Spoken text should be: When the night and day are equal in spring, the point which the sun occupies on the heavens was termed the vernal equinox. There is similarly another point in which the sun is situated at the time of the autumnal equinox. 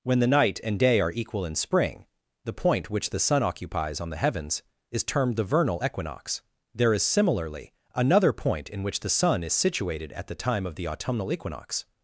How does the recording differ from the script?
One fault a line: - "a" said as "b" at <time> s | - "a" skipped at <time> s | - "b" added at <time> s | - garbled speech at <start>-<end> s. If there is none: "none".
- "was" said as "is" at 4.9 s